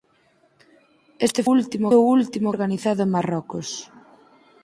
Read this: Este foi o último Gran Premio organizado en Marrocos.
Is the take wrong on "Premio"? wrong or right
wrong